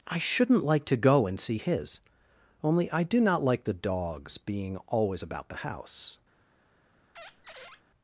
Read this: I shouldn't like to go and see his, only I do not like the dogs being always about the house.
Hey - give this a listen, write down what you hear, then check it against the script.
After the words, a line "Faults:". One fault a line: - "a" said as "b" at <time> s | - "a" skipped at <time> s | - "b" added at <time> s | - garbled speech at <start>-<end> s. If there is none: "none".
I shouldn't like to go and see his, only I do not like the dogs being always about the house.
Faults:
none